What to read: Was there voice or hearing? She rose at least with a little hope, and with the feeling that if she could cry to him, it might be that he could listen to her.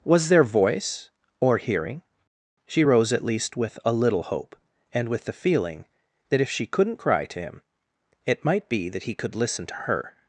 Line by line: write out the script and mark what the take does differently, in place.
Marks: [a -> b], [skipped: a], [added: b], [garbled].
Was there voice or hearing? She rose at least with a little hope, and with the feeling that if she [could -> couldn't] cry to him, it might be that he could listen to her.